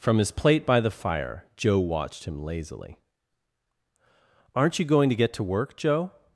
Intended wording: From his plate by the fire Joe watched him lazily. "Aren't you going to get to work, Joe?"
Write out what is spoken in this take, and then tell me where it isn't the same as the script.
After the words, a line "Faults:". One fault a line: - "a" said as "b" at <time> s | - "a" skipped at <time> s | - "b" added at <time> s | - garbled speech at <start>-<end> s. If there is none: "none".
From his plate by the fire Joe watched him lazily. "Aren't you going to get to work, Joe?"
Faults:
none